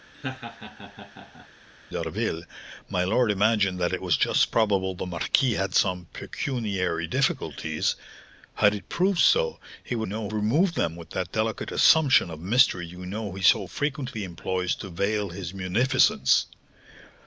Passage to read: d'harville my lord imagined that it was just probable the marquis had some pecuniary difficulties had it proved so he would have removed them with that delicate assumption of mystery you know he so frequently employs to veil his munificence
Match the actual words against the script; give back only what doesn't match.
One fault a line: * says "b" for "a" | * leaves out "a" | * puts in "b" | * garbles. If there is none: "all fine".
* says "know" for "have"